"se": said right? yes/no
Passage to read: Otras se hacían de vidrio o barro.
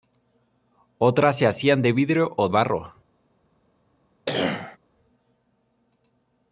yes